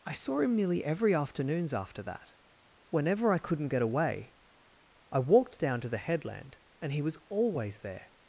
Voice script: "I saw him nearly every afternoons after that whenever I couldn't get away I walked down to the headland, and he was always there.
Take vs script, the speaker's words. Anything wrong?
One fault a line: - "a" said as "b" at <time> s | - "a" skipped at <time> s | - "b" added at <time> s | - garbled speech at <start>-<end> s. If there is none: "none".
none